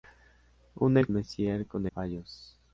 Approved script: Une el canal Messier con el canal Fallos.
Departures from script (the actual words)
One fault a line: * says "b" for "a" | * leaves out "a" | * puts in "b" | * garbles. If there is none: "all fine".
* leaves out "canal"
* leaves out "el canal"